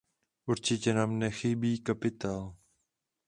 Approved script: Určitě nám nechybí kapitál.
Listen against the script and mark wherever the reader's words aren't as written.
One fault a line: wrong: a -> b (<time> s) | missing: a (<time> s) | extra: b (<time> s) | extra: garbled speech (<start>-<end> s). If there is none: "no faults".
no faults